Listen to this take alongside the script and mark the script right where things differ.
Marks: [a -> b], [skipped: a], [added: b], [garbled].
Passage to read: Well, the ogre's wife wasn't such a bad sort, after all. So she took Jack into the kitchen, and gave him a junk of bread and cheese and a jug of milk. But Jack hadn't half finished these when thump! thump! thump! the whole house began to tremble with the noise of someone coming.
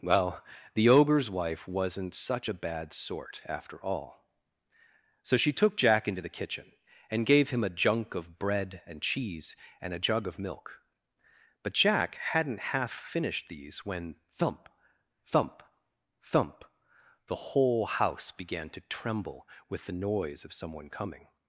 Well, the ogre's wife wasn't such a bad sort, after all. So she took Jack into the kitchen, and gave him a junk of bread and cheese and a jug of milk. But Jack hadn't half finished these when thump! thump! thump! the whole house began to tremble with the noise of someone coming.